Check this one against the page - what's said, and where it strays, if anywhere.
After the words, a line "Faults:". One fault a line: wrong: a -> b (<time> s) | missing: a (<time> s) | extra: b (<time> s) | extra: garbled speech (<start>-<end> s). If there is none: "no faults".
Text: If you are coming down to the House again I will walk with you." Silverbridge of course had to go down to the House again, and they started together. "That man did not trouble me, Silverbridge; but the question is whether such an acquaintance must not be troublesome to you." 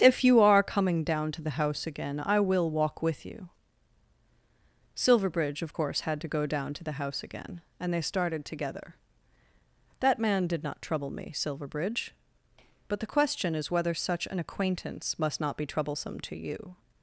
If you are coming down to the House again I will walk with you." Silverbridge of course had to go down to the House again, and they started together. "That man did not trouble me, Silverbridge; but the question is whether such an acquaintance must not be troublesome to you."
Faults:
no faults